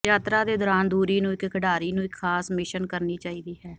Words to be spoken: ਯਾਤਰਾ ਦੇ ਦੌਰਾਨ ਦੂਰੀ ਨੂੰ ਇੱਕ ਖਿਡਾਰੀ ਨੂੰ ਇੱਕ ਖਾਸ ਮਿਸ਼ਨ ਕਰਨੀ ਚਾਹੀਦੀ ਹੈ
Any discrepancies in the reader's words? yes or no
no